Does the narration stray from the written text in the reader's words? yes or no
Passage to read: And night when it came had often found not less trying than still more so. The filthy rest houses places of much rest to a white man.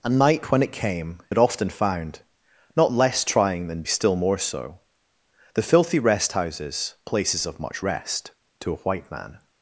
no